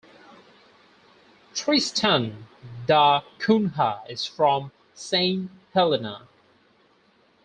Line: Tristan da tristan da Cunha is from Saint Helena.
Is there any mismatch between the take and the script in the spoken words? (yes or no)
yes